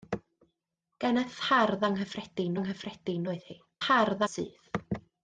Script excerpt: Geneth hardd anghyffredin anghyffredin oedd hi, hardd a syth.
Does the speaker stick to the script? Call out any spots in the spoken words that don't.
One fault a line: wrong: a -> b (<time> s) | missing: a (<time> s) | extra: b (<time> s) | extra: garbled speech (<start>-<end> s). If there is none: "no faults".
no faults